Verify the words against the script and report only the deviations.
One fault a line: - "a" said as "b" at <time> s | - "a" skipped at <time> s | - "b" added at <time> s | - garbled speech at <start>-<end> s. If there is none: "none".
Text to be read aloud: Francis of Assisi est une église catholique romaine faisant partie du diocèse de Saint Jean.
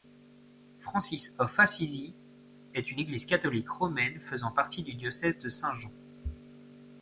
none